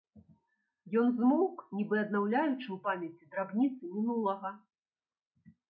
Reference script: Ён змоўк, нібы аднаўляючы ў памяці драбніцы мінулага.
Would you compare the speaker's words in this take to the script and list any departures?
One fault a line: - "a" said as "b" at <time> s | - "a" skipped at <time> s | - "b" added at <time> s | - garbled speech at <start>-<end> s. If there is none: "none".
none